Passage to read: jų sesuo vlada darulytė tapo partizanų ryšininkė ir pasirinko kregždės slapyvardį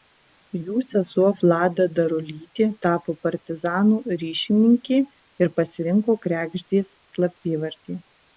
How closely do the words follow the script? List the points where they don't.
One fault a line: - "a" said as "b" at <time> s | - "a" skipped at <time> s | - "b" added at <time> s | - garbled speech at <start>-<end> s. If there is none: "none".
none